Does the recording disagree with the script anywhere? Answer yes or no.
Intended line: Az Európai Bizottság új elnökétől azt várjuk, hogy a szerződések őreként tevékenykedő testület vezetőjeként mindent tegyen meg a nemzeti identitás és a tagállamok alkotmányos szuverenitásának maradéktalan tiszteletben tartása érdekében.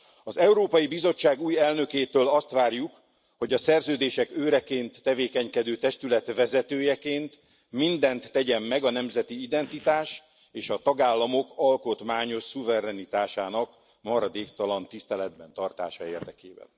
no